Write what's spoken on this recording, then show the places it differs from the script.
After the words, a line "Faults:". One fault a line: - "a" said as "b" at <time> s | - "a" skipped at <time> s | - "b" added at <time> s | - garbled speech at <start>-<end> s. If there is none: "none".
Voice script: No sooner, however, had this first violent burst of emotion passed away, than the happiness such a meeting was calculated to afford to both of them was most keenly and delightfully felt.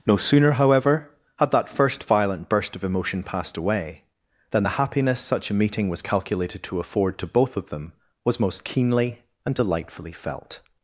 No sooner, however, had that first violent burst of emotion passed away, than the happiness such a meeting was calculated to afford to both of them was most keenly and delightfully felt.
Faults:
- "this" said as "that" at 1.5 s